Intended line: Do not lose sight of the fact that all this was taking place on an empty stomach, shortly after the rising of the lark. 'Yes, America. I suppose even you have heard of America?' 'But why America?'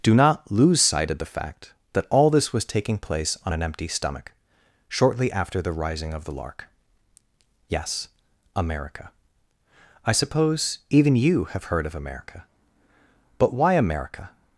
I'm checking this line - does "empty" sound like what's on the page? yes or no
yes